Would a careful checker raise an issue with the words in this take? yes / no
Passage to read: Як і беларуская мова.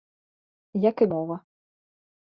yes